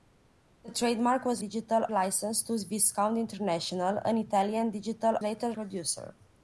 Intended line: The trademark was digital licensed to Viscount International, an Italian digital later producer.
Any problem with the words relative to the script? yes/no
no